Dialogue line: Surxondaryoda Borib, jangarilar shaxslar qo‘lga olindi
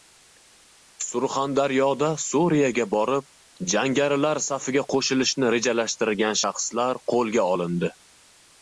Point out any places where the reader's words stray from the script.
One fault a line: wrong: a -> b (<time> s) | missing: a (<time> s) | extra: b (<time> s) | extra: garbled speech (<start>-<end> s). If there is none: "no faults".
extra: Suriyaga (2.2 s)
extra: safiga qo‘shilishni rejalashtirgan (4.5 s)